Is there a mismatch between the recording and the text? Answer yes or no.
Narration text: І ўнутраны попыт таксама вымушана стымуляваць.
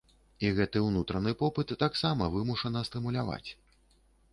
yes